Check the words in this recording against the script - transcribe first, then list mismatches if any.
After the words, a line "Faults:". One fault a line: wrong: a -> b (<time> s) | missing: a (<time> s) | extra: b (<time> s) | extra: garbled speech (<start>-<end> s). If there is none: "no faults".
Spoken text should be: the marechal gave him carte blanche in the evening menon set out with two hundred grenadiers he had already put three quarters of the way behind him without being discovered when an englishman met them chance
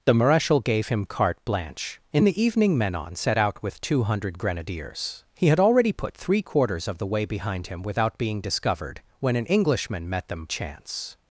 the marechal gave him carte blanche in the evening menon set out with two hundred grenadiers he had already put three quarters of the way behind him without being discovered when an englishman met them chance
Faults:
no faults